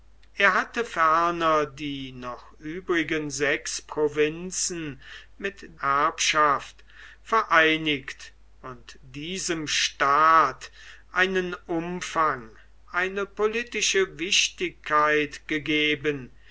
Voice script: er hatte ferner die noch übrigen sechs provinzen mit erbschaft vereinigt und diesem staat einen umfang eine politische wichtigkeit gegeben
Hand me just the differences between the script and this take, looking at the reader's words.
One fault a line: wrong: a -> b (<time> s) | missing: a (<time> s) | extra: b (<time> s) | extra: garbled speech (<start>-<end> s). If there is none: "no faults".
no faults